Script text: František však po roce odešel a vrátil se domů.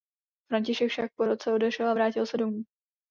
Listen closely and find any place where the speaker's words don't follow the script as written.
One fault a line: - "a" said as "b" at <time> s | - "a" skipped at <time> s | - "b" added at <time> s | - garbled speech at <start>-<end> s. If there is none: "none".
none